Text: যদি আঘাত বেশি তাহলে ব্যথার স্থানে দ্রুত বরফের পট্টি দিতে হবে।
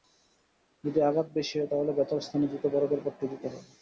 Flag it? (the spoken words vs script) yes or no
yes